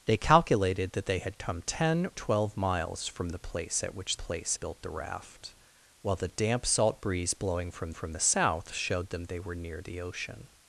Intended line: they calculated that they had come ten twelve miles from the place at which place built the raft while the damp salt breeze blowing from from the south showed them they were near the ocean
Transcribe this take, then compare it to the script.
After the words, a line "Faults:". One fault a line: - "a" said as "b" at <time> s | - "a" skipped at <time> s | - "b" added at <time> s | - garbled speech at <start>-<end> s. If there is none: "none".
they calculated that they had come ten twelve miles from the place at which place built the raft while the damp salt breeze blowing from from the south showed them they were near the ocean
Faults:
none